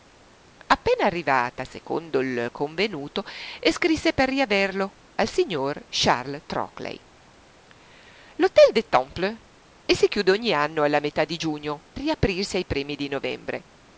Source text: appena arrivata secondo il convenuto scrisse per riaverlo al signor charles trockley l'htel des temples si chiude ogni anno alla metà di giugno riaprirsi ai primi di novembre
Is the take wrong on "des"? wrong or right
right